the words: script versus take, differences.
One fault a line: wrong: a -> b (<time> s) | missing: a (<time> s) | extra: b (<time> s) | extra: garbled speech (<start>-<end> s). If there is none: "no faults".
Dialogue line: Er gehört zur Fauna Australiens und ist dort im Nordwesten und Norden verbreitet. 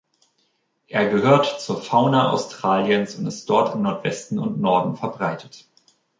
no faults